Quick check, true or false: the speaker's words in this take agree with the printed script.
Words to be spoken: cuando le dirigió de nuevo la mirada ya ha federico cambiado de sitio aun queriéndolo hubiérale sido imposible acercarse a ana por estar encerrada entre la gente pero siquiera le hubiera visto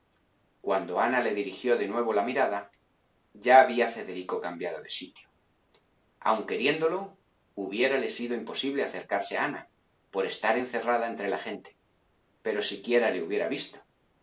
false